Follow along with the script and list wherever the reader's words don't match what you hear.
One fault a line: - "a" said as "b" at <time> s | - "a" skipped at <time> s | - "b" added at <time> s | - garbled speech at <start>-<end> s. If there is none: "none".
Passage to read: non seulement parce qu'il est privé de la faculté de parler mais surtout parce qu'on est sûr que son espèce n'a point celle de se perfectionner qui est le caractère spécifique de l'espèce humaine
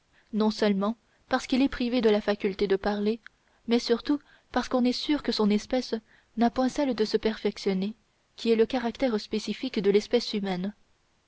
none